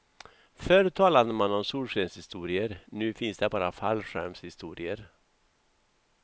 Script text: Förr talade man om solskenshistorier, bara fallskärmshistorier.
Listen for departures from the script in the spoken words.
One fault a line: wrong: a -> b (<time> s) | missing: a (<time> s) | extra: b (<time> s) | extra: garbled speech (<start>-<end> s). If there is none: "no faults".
extra: nu finns det (2.9 s)